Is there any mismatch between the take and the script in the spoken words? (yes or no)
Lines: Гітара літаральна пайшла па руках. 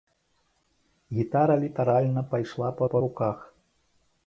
yes